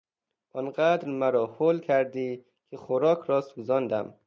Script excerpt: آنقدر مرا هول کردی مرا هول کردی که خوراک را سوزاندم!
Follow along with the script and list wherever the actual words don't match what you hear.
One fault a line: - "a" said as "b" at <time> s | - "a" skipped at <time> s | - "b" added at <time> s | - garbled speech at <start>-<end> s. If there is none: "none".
- "مرا هول کردی" skipped at 2.5 s